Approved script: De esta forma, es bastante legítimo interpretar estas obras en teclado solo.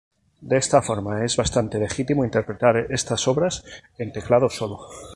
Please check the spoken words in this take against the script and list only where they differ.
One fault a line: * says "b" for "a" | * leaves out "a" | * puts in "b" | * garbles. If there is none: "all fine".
all fine